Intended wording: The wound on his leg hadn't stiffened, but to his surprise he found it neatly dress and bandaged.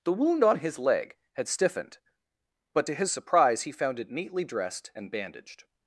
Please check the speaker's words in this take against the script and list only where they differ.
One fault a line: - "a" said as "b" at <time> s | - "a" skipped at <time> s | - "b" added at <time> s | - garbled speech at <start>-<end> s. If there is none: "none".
- "hadn't" said as "had" at 1.3 s
- "dress" said as "dressed" at 4.4 s